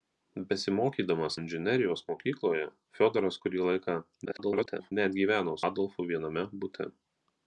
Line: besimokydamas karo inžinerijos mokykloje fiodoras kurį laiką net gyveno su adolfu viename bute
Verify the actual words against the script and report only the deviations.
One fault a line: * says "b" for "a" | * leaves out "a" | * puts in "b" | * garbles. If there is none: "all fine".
* leaves out "karo"
* garbles
* leaves out "su"